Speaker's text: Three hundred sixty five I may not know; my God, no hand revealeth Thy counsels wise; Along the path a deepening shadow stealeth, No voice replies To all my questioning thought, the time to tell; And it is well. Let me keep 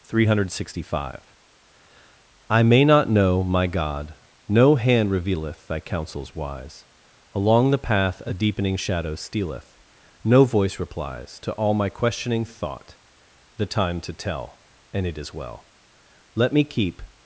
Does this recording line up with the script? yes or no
yes